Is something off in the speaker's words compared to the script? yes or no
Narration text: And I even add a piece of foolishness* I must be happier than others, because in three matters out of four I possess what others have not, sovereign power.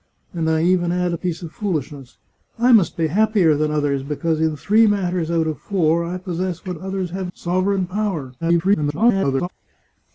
yes